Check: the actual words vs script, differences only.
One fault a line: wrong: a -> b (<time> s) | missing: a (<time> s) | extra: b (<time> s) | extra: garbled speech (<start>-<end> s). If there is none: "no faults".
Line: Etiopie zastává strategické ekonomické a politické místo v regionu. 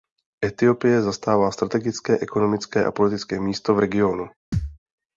no faults